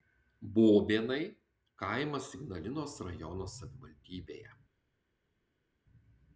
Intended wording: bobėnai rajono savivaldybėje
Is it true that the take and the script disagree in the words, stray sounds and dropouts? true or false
true